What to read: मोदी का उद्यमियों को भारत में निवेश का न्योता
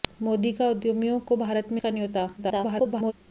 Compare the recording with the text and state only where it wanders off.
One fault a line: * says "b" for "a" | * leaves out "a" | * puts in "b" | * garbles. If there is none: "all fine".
* leaves out "निवेश"
* garbles